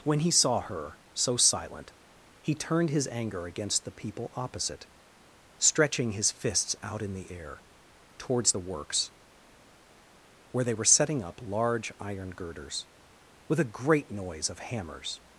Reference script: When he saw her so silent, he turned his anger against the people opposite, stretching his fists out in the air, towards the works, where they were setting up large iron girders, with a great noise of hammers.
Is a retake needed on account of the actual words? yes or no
no